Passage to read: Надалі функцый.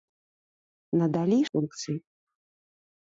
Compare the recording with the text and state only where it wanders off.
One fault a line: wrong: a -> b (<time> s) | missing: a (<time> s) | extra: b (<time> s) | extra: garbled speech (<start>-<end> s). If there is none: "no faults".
no faults